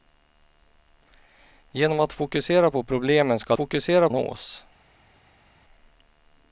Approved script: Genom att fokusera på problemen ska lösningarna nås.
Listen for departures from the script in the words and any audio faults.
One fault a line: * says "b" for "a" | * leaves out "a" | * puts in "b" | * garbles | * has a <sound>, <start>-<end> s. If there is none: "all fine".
* says "fokusera" for "lösningarna"